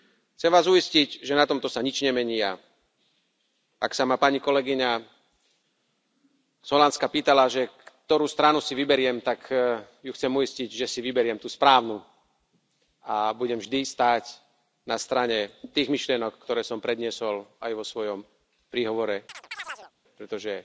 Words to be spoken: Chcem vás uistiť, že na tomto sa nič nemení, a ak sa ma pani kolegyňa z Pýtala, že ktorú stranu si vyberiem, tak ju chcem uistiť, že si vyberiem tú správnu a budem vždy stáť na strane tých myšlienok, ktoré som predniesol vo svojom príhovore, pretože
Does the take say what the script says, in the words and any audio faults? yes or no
no